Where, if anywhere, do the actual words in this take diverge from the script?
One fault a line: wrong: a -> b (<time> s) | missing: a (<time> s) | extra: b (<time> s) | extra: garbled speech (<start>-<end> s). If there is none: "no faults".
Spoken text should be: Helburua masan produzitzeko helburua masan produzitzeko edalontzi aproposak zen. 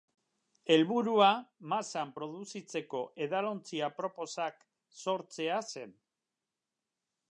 missing: helburua masan produzitzeko (3.0 s)
extra: sortzea (5.0 s)